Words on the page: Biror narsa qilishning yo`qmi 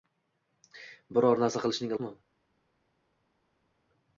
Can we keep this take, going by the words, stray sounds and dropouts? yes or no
yes